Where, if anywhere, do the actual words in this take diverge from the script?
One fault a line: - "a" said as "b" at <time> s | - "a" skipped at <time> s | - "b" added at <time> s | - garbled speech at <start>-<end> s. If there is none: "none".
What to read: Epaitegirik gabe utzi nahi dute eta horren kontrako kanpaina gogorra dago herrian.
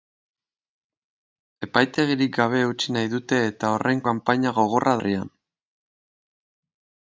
- "kontrako" skipped at 4.0 s
- "dago" skipped at 5.0 s